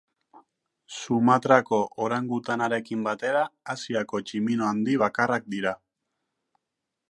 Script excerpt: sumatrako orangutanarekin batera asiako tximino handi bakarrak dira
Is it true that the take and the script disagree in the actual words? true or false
false